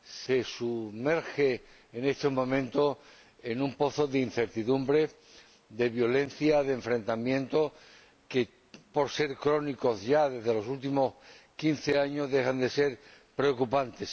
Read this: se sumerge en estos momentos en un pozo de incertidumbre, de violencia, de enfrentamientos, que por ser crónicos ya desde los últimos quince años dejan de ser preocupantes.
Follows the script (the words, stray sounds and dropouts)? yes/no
yes